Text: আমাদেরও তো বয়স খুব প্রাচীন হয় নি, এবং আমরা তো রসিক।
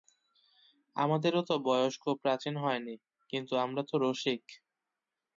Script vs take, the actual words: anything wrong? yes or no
yes